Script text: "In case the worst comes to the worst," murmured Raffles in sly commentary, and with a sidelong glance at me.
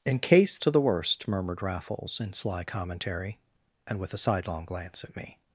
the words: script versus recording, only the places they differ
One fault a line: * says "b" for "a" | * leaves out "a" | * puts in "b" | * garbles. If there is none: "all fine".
* leaves out "the worst comes"